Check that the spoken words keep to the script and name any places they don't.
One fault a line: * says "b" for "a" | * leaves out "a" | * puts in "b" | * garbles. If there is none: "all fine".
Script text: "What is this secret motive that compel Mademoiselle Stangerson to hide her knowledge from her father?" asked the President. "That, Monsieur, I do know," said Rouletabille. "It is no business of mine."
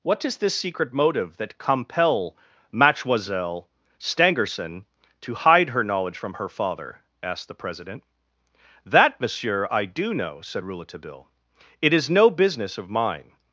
all fine